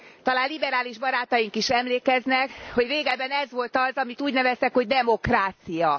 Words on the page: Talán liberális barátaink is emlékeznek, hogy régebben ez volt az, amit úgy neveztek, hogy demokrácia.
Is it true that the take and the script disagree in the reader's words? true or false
false